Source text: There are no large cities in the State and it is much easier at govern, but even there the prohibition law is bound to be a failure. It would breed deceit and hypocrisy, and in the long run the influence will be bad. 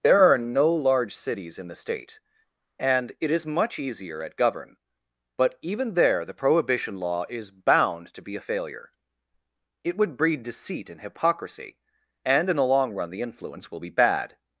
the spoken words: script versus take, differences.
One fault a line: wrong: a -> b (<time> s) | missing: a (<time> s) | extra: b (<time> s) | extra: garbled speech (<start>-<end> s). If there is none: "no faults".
no faults